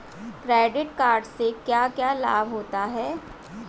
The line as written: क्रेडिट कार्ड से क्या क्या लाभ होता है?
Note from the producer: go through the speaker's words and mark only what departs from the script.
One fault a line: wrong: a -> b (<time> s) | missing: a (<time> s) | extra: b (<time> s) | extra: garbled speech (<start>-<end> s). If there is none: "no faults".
no faults